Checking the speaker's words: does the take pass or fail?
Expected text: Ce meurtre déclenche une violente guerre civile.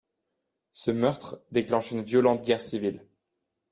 pass